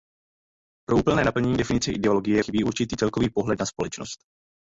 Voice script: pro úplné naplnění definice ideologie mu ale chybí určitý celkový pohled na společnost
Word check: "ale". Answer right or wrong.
wrong